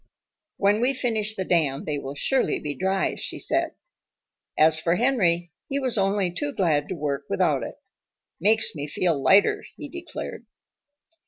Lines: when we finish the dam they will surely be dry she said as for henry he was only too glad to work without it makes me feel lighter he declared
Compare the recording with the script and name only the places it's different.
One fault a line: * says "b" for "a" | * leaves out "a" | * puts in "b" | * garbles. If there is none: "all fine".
all fine